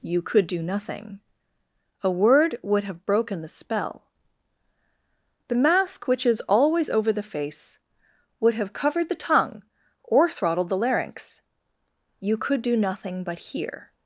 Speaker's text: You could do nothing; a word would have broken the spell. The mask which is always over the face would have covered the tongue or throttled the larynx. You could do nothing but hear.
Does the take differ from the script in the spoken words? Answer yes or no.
no